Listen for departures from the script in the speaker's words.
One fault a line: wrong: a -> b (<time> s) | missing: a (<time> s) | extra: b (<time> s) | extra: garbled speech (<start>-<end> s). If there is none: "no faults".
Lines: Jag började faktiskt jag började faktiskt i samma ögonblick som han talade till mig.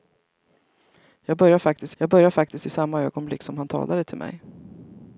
no faults